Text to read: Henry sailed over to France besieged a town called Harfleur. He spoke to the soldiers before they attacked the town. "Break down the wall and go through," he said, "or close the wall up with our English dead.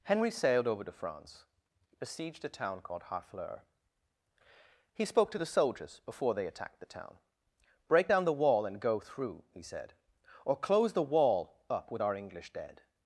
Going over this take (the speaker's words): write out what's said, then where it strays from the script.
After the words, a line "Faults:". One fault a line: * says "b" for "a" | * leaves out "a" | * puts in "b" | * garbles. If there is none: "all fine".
Henry sailed over to France besieged a town called Harfleur. He spoke to the soldiers before they attacked the town. "Break down the wall and go through," he said, "or close the wall up with our English dead.
Faults:
all fine